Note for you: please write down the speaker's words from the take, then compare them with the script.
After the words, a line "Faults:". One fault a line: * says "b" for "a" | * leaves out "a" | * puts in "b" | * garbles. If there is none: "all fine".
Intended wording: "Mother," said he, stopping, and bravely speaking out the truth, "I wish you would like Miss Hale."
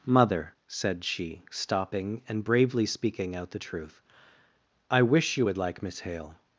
"Mother," said she, stopping, and bravely speaking out the truth, "I wish you would like Miss Hale."
Faults:
* says "she" for "he"